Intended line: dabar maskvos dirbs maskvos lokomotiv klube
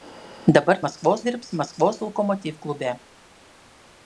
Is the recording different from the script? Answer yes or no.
no